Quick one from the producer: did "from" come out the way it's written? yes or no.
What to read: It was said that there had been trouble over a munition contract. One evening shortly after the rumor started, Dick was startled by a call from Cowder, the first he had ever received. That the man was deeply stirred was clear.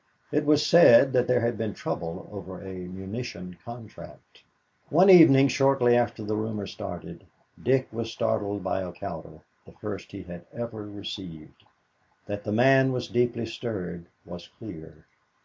no